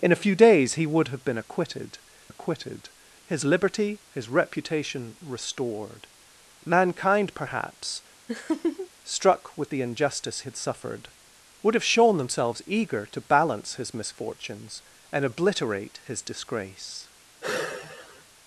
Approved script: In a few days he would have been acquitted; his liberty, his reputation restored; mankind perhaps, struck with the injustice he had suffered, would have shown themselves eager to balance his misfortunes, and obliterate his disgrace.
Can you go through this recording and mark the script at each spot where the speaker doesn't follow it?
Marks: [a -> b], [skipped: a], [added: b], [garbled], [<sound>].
In a few days he would have been acquitted; [added: acquitted] his liberty, his reputation restored; mankind perhaps, [laugh] struck with the injustice [skipped: he] had suffered, would have shown themselves eager to balance his misfortunes, and obliterate his disgrace. [sigh]